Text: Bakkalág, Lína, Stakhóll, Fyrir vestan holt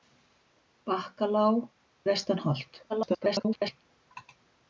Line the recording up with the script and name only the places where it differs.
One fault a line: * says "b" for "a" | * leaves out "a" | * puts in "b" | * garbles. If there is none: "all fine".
* leaves out "Lína Stakhóll Fyrir"
* garbles